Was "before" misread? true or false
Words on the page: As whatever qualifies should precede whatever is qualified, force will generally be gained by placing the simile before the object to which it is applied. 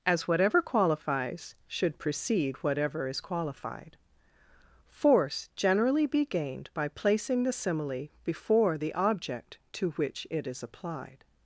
false